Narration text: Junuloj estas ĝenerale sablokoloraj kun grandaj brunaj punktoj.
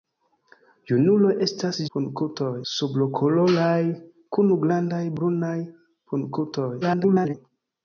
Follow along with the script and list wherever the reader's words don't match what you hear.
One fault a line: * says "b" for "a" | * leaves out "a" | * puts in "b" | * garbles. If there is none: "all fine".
* says "punktoj" for "ĝenerale"
* garbles